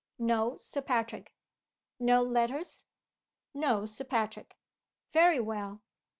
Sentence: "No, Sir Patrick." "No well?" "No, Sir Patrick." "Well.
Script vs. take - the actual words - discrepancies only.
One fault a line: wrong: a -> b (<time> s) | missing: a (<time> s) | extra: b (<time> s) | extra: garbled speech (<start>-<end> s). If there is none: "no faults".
wrong: well -> letters (2.2 s)
extra: Very (5.1 s)